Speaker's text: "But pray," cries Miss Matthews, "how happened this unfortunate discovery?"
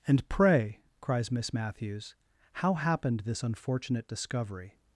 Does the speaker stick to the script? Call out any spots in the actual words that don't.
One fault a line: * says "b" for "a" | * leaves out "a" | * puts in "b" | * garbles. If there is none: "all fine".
* says "And" for "But"